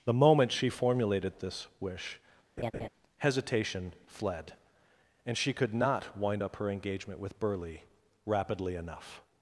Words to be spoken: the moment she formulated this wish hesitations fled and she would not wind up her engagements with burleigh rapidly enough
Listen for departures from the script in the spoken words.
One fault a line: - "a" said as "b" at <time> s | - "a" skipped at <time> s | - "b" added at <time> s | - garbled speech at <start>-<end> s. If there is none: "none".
- "hesitations" said as "hesitation" at 3.2 s
- "would" said as "could" at 5.5 s
- "engagements" said as "engagement" at 6.7 s